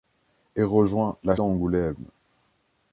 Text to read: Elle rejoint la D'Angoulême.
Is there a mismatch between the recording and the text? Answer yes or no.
no